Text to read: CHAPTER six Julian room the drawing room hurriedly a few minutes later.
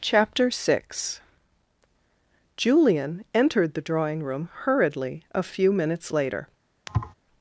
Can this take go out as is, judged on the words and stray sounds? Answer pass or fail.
fail